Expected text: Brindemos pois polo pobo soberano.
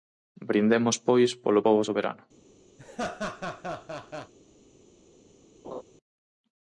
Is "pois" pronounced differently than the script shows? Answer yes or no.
no